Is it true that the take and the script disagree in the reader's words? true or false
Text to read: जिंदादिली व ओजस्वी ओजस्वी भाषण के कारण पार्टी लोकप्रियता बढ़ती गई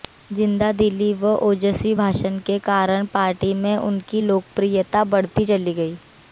true